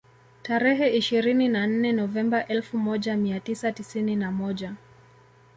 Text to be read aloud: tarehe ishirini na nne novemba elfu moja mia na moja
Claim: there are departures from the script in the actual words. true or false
true